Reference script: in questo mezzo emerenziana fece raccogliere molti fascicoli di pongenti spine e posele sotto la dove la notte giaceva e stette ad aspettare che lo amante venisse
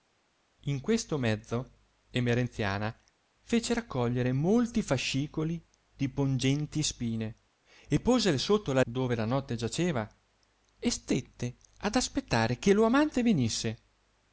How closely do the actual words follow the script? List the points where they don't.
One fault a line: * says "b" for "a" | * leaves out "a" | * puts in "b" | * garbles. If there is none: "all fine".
all fine